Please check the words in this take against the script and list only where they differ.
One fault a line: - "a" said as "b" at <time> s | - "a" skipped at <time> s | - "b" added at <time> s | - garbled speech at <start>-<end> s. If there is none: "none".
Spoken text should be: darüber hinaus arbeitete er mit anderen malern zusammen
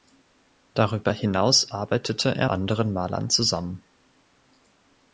- "mit" skipped at 2.5 s